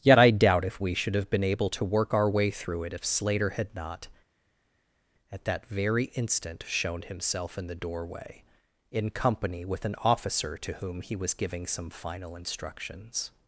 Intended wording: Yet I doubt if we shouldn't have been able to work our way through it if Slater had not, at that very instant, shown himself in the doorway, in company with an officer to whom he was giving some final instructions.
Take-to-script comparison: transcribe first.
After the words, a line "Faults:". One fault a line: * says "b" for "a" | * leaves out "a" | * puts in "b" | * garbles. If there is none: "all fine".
Yet I doubt if we should have been able to work our way through it if Slater had not, at that very instant, shown himself in the doorway, in company with an officer to whom he was giving some final instructions.
Faults:
* says "should" for "shouldn't"